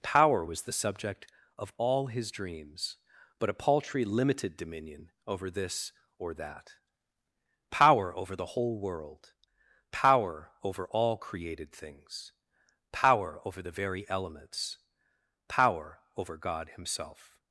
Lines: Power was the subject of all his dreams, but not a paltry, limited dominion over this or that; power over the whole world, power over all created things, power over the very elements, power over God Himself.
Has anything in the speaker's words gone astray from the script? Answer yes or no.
yes